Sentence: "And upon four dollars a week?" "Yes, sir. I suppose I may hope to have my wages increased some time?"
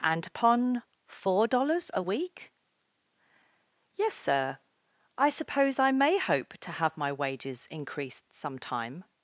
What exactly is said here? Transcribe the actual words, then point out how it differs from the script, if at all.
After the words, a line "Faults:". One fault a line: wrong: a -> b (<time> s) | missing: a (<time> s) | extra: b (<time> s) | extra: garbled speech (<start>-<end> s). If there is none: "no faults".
"And upon four dollars a week?" "Yes, sir. I suppose I may hope to have my wages increased some time?"
Faults:
no faults